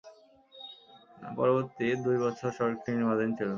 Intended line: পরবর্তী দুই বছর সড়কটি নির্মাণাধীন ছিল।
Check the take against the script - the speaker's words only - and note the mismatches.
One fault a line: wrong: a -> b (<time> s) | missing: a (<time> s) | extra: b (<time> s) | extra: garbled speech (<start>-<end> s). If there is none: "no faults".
no faults